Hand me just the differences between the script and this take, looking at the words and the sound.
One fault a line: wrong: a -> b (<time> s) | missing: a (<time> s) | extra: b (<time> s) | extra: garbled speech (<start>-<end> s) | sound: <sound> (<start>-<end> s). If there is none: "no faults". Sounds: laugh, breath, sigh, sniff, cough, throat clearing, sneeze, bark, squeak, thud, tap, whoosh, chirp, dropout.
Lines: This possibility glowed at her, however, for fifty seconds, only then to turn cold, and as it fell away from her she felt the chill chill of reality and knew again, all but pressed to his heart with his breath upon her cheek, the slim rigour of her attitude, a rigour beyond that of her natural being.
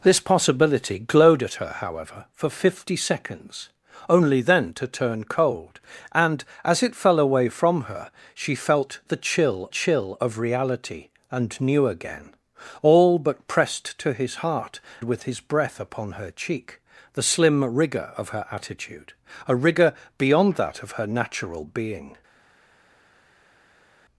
no faults